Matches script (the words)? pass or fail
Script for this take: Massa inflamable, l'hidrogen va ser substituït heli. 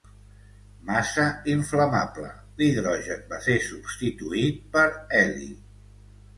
fail